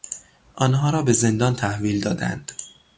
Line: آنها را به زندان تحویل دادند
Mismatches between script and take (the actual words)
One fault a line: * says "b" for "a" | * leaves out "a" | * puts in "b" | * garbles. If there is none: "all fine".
all fine